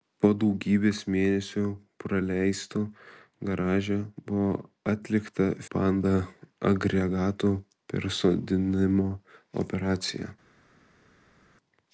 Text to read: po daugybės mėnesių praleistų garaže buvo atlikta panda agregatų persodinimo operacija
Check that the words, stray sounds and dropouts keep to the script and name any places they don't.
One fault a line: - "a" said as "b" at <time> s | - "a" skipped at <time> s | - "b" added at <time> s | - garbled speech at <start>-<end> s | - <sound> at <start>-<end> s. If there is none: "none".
none